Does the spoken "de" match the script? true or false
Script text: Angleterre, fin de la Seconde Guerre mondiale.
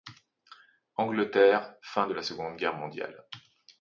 true